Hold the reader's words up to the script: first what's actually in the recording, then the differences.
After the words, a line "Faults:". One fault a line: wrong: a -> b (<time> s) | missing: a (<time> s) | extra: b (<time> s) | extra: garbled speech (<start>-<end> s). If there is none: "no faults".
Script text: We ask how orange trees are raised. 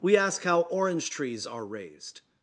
We ask how orange trees are raised.
Faults:
no faults